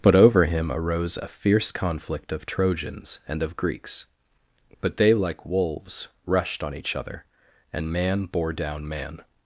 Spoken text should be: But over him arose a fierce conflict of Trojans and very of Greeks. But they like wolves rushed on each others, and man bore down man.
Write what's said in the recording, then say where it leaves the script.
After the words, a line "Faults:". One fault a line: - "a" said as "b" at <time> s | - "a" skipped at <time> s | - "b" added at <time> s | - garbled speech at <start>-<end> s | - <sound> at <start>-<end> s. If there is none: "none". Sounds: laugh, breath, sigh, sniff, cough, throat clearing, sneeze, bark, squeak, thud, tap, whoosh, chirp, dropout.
But over him arose a fierce conflict of Trojans and of Greeks. But they like wolves rushed on each other, and man bore down man.
Faults:
- "very" skipped at 3.4 s
- "others" said as "other" at 7.0 s